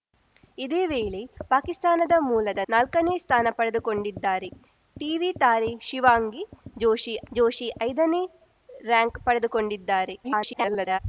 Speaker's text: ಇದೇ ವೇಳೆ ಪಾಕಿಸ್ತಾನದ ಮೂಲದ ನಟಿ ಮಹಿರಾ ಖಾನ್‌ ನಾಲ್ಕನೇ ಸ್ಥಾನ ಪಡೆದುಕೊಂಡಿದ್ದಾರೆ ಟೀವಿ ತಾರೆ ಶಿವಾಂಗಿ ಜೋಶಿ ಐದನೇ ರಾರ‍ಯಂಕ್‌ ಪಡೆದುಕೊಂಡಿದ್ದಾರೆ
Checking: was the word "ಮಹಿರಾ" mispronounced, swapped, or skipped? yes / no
yes